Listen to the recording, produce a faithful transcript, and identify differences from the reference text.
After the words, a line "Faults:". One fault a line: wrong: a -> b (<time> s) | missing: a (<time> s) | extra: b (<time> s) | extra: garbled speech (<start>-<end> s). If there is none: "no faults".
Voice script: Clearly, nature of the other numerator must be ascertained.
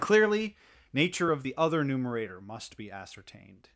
Clearly, nature of the other numerator must be ascertained.
Faults:
no faults